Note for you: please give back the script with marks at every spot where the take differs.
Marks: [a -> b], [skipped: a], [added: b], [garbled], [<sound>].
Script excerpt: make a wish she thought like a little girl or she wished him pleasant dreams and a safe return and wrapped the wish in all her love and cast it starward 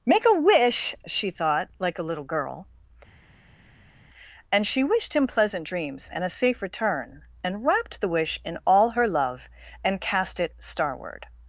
make a wish she thought like a little girl [or -> and] she wished him pleasant dreams and a safe return and wrapped the wish in all her love and cast it starward